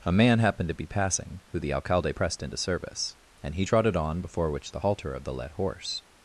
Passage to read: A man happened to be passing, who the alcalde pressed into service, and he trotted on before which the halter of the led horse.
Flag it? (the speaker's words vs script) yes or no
no